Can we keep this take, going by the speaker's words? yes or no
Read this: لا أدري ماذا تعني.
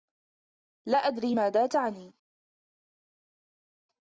yes